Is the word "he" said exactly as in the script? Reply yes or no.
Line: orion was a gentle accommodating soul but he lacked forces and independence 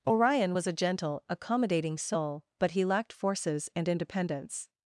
yes